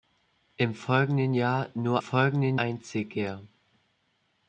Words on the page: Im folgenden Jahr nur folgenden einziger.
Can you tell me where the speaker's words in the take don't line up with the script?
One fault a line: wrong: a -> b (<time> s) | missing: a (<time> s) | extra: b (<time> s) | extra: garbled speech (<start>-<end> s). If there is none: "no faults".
no faults